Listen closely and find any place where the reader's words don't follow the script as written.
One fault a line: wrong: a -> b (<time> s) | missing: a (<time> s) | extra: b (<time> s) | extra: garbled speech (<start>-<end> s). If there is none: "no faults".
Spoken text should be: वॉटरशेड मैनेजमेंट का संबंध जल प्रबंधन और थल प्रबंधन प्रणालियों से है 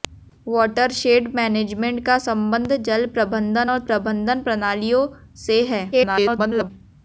missing: थल (3.8 s)
extra: garbled speech (5.9-6.7 s)